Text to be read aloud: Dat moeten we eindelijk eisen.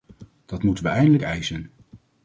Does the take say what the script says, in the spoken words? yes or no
yes